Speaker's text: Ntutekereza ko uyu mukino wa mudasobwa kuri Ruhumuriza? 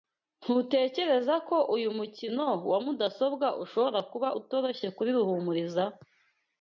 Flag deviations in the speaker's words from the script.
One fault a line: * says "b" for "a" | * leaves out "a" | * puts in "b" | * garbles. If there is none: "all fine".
* puts in "ushobora kuba utoroshye"